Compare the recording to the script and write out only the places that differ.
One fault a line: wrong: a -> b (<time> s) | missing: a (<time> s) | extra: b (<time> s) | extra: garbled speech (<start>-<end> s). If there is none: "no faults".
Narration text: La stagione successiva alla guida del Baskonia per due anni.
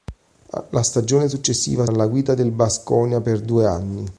no faults